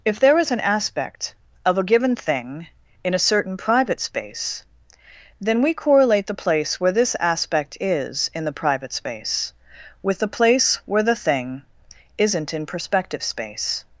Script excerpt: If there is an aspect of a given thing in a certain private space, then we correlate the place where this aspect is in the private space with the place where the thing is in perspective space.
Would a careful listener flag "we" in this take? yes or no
no